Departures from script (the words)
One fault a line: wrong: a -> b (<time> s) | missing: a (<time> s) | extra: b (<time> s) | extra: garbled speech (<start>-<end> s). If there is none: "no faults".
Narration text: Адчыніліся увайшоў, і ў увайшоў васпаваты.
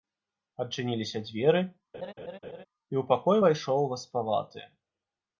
wrong: увайшоў -> дзверы (1.3 s)
extra: пакой (3.1 s)